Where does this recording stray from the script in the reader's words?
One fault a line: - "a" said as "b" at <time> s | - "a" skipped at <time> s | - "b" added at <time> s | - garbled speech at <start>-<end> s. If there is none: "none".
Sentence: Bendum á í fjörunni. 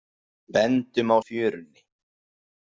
none